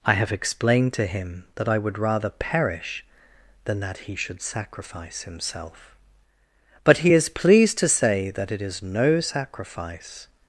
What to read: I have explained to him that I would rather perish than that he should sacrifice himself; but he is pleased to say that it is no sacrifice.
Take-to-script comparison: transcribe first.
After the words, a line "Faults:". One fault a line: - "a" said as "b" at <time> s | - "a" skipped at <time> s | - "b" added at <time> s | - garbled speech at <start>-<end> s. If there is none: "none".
I have explained to him that I would rather perish than that he should sacrifice himself; but he is pleased to say that it is no sacrifice.
Faults:
none